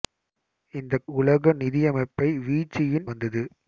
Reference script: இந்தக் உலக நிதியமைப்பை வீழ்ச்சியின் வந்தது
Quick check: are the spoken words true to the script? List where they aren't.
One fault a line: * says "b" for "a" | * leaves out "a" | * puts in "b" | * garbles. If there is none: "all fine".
all fine